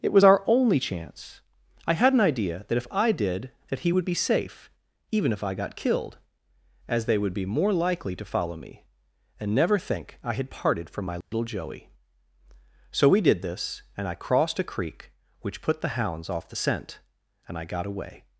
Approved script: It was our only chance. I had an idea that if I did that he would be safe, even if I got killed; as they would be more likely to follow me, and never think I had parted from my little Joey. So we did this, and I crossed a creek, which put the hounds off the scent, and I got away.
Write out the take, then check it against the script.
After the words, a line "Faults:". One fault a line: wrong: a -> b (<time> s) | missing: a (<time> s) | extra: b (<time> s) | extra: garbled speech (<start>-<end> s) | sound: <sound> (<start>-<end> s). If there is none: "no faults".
It was our only chance. I had an idea that if I did that he would be safe, even if I got killed; as they would be more likely to follow me, and never think I had parted from my little Joey. So we did this, and I crossed a creek, which put the hounds off the scent, and I got away.
Faults:
sound: dropout (11.2-11.3 s)